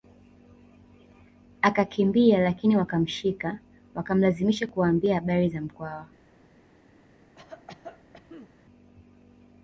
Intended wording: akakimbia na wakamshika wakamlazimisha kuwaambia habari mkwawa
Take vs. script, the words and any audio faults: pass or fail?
fail